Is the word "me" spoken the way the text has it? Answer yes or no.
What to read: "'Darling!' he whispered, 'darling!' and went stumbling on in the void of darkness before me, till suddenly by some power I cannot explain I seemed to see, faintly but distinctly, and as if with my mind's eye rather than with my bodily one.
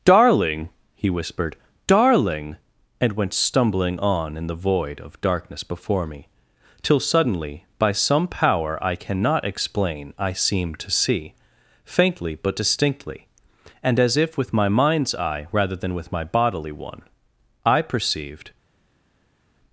yes